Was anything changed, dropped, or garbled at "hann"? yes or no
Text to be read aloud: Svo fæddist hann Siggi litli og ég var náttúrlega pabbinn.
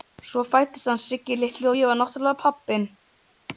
no